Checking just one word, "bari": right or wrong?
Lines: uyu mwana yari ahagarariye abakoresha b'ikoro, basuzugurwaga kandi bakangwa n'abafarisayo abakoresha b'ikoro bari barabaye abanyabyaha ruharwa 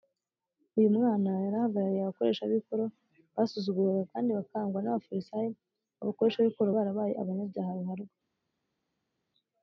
wrong